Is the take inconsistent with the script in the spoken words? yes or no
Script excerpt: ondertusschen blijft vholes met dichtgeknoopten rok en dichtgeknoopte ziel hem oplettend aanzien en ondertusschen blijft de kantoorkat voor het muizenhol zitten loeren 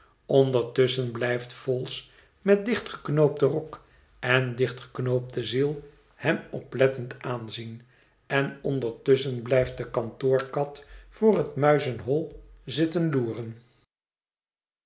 no